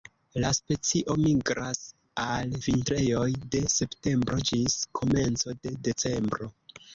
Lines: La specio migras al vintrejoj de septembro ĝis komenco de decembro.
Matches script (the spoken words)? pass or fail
pass